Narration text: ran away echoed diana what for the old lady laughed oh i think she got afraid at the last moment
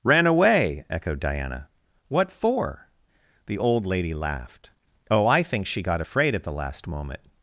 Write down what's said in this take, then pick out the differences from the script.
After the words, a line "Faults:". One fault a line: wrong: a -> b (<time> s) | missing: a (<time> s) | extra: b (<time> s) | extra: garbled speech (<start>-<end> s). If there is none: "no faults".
ran away echoed diana what for the old lady laughed oh i think she got afraid at the last moment
Faults:
no faults